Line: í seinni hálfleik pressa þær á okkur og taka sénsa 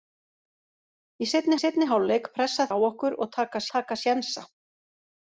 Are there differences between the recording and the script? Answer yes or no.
yes